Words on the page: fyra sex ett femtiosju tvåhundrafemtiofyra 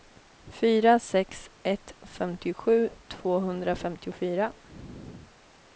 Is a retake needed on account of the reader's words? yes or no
no